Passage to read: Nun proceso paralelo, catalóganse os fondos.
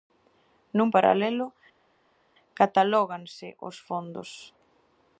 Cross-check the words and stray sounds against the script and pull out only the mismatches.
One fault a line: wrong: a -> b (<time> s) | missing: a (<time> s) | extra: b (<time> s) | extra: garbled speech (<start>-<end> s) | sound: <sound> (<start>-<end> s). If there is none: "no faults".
missing: proceso (0.9 s)